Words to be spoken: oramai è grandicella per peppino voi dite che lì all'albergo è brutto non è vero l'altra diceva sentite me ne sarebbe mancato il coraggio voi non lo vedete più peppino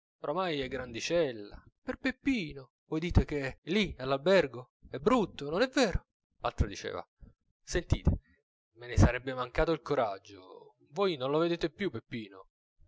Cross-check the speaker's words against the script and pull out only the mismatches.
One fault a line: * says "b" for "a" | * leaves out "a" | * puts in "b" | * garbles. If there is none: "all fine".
all fine